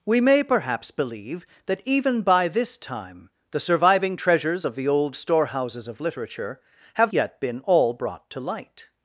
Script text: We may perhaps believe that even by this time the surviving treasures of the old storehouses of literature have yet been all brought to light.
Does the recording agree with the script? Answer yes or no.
yes